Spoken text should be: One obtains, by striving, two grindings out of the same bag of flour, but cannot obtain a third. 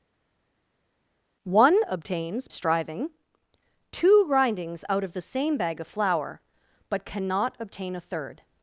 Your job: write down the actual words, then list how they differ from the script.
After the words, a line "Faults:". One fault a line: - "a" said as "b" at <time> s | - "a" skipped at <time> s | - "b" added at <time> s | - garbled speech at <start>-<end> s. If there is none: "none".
One obtains, striving, two grindings out of the same bag of flour, but cannot obtain a third.
Faults:
- "by" skipped at 2.5 s